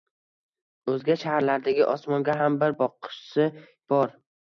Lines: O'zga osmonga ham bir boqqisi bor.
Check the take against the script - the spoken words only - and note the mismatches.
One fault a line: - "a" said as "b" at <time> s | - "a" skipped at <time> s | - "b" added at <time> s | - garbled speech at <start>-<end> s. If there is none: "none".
- "shaharlardagi" added at 1.2 s